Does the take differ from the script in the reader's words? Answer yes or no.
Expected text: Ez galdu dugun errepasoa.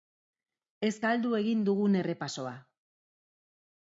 yes